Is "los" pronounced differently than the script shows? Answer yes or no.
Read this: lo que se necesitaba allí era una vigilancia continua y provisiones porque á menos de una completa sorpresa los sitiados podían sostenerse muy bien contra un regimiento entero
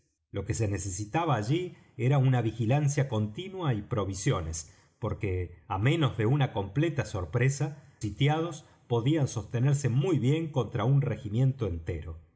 yes